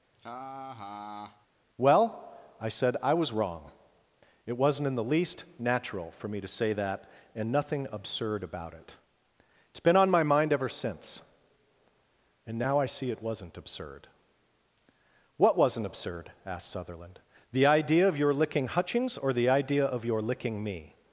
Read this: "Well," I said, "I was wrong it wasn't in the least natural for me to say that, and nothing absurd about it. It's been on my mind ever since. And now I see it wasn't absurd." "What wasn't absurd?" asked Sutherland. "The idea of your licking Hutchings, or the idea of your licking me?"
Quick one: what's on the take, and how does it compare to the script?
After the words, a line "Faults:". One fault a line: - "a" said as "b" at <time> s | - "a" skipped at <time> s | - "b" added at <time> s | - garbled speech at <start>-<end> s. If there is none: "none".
"Well," I said, "I was wrong it wasn't in the least natural for me to say that, and nothing absurd about it. It's been on my mind ever since. And now I see it wasn't absurd." "What wasn't absurd?" asked Sutherland. "The idea of your licking Hutchings, or the idea of your licking me?"
Faults:
none